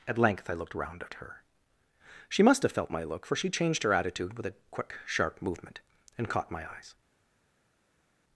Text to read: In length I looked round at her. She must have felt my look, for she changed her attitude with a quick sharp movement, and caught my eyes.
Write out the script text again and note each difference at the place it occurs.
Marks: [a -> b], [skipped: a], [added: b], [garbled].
[In -> At] length I looked round at her. She must have felt my look, for she changed her attitude with a quick sharp movement, and caught my eyes.